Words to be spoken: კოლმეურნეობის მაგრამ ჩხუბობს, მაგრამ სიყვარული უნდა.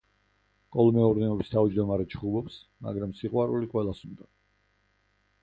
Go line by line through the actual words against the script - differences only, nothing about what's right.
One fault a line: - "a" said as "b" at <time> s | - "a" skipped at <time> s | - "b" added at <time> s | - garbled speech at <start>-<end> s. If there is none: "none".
- "მაგრამ" said as "თავმჯდომარე" at 1.6 s
- "ყველას" added at 3.8 s